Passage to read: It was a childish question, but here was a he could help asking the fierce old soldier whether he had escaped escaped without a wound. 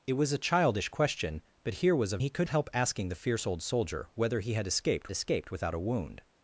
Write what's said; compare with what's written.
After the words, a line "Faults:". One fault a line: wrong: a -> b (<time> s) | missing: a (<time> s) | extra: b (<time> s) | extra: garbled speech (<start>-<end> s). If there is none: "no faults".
It was a childish question, but here was a he could help asking the fierce old soldier whether he had escaped escaped without a wound.
Faults:
no faults